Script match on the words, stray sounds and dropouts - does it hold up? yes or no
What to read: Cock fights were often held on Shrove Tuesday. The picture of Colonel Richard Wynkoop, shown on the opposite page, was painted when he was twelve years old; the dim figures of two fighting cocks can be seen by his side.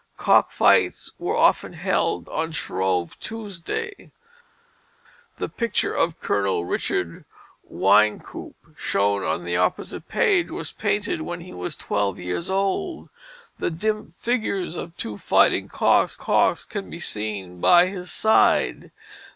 no